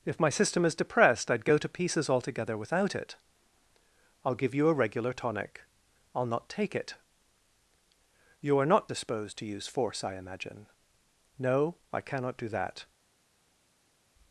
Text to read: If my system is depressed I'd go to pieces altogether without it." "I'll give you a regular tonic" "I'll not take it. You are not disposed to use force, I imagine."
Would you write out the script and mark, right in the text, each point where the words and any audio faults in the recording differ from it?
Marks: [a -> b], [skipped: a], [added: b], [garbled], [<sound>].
If my system is depressed I'd go to pieces altogether without it." "I'll give you a regular tonic" "I'll not take it. You are not disposed to use force, I imagine." [added: No I cannot do that]